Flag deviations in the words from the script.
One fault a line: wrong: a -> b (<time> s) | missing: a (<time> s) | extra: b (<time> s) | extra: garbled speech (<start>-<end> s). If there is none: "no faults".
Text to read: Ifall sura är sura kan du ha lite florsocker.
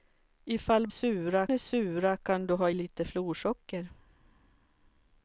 no faults